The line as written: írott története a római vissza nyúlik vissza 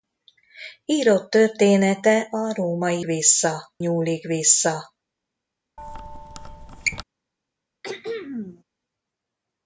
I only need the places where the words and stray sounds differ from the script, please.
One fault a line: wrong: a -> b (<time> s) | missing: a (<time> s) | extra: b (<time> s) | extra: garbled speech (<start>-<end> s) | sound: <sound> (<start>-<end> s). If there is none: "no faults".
sound: squeak (5.8-7.0 s)
sound: throat clearing (7.8-8.6 s)